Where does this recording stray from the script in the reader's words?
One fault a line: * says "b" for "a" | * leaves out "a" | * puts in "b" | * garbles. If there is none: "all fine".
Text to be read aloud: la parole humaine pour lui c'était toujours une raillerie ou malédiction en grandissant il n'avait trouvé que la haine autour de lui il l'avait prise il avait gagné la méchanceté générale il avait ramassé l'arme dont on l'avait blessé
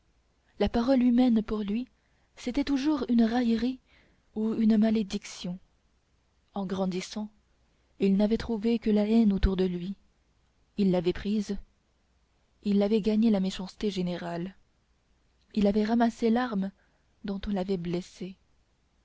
* puts in "une"